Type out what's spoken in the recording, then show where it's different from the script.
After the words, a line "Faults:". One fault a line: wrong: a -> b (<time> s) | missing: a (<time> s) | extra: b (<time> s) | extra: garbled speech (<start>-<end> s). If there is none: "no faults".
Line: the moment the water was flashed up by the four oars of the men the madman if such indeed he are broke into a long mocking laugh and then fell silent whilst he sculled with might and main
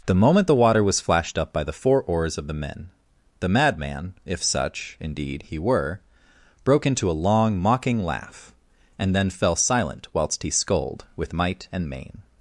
the moment the water was flashed up by the four oars of the men the madman if such indeed he were broke into a long mocking laugh and then fell silent whilst he sculled with might and main
Faults:
wrong: are -> were (5.6 s)